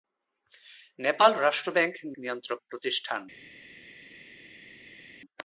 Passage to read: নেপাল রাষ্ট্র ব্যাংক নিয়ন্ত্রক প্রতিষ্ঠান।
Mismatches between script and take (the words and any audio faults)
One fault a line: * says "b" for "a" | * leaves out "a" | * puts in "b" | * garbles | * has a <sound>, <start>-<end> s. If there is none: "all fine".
all fine